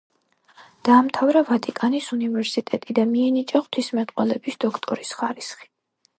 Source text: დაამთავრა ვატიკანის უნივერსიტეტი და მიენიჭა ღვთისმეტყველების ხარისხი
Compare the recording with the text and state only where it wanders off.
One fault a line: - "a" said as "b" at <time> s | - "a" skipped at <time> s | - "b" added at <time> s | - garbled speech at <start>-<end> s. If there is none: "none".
- "დოქტორის" added at 4.7 s